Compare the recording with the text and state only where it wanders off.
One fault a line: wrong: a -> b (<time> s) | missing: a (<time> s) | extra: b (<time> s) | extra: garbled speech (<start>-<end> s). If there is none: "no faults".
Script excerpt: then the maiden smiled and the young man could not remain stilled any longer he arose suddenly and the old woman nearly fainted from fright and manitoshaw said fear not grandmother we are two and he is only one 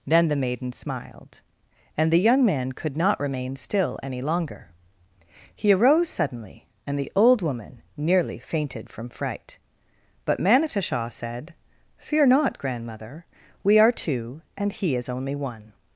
wrong: stilled -> still (3.5 s)
wrong: and -> but (10.2 s)